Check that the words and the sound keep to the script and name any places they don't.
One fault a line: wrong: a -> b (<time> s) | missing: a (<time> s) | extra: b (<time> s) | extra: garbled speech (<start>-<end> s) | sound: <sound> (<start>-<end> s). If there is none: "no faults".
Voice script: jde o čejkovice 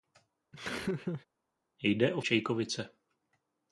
sound: laugh (0.5-1.3 s)